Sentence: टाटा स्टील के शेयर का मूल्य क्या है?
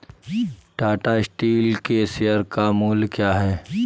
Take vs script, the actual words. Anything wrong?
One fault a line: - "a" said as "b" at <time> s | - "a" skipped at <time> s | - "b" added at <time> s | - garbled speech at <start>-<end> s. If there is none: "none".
none